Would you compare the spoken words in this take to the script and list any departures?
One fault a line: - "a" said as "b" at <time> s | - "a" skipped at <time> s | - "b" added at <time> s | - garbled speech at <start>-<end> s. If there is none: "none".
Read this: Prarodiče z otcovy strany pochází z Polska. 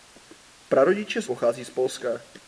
- "otcovy strany" skipped at 1.3 s